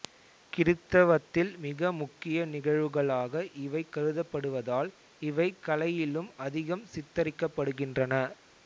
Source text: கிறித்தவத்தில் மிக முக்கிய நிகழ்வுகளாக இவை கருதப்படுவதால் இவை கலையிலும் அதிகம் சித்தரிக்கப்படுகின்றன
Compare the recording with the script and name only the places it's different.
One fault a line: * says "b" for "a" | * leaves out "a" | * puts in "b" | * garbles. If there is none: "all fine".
all fine